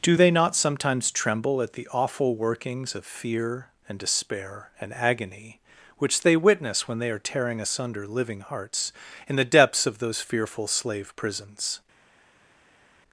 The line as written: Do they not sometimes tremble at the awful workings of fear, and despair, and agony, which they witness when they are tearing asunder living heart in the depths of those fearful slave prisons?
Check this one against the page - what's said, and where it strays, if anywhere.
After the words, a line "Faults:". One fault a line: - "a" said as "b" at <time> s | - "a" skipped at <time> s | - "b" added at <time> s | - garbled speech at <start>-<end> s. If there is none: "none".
Do they not sometimes tremble at the awful workings of fear, and despair, and agony, which they witness when they are tearing asunder living hearts in the depths of those fearful slave prisons?
Faults:
- "heart" said as "hearts" at 8.4 s